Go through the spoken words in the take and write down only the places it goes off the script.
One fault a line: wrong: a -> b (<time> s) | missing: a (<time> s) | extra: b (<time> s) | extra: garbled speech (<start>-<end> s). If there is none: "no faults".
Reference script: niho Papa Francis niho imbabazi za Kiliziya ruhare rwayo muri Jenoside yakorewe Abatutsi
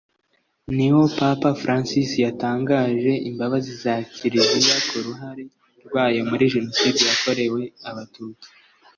wrong: niho -> yatangaje (2.2 s)
extra: ku (4.9 s)